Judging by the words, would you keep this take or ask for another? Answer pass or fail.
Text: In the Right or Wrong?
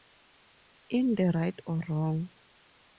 pass